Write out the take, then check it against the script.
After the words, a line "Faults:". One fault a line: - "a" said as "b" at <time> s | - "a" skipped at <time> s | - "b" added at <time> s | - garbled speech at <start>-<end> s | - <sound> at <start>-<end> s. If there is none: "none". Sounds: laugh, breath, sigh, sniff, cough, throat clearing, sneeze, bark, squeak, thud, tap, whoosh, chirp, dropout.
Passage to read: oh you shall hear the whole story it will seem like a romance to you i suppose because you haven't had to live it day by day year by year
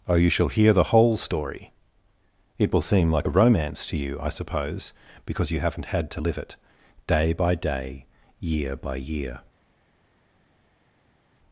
oh you shall hear the whole story it will seem like a romance to you i suppose because you haven't had to live it day by day year by year
Faults:
none